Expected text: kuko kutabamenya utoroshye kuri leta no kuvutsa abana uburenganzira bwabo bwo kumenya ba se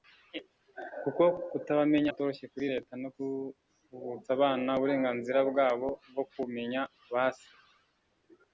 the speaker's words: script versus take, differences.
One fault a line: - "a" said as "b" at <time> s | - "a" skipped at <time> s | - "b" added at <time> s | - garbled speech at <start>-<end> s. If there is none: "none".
none